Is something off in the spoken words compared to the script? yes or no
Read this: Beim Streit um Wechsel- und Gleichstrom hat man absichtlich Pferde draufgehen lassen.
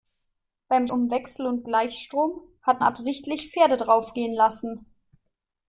yes